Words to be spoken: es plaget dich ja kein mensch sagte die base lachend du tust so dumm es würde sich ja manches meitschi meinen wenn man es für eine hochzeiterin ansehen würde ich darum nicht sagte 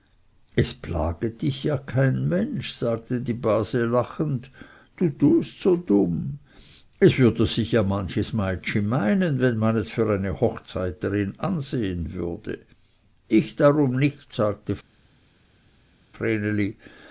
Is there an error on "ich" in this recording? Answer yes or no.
no